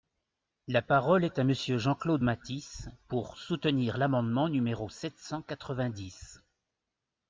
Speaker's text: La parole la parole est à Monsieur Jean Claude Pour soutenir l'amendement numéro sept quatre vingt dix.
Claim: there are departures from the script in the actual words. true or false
true